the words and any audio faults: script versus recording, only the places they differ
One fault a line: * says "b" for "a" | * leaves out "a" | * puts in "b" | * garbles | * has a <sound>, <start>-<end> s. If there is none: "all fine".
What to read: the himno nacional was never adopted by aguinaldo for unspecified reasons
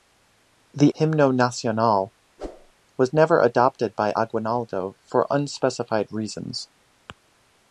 * has a whoosh, 2.4-2.7 s